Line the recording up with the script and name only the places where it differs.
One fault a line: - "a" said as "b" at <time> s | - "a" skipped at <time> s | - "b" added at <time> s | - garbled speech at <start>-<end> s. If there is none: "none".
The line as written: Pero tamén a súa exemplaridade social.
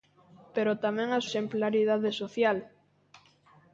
- "súa" skipped at 1.2 s